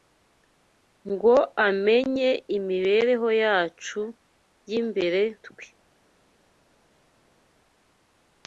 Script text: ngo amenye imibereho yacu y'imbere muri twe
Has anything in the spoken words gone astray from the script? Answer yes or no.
yes